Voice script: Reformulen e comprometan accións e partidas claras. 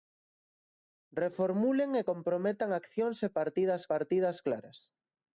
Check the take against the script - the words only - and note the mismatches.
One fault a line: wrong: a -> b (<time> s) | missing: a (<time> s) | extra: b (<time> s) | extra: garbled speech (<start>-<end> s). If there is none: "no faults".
extra: partidas (3.9 s)